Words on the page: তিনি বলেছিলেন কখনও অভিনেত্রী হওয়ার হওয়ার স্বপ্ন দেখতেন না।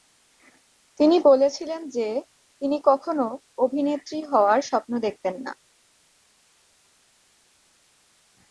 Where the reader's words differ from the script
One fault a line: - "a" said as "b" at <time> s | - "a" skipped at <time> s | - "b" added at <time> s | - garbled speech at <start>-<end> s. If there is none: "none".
- "যে তিনি" added at 1.9 s
- "হওয়ার" skipped at 4.6 s